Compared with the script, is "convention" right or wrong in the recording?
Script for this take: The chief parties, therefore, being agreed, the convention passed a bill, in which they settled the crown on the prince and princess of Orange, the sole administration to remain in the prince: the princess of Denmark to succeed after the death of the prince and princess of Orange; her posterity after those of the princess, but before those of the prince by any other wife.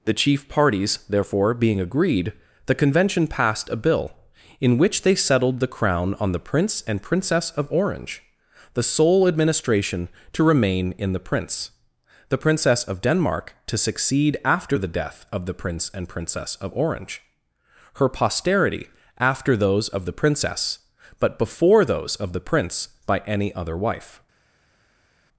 right